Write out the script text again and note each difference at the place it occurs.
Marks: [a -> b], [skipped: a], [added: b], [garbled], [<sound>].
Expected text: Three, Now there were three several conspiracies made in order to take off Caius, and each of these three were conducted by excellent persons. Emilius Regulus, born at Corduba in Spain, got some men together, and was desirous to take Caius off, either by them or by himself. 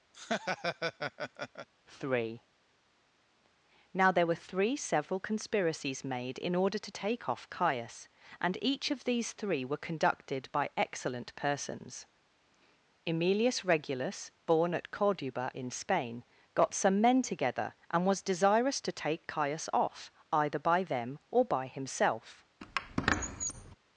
[laugh] Three, Now there were three several conspiracies made in order to take off Caius, and each of these three were conducted by excellent persons. Emilius Regulus, born at Corduba in Spain, got some men together, and was desirous to take Caius off, either by them or by himself. [squeak]